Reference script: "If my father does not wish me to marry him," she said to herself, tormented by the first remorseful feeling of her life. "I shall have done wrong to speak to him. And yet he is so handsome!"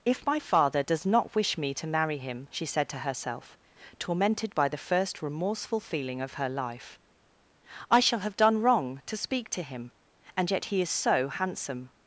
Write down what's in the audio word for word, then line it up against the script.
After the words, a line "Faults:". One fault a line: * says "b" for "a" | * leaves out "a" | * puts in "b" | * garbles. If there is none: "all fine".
"If my father does not wish me to marry him," she said to herself, tormented by the first remorseful feeling of her life. "I shall have done wrong to speak to him. And yet he is so handsome!"
Faults:
all fine